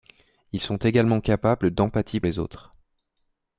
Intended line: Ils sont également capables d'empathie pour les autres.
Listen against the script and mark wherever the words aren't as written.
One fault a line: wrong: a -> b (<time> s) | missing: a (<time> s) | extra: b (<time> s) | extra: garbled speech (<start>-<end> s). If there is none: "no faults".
missing: pour (2.2 s)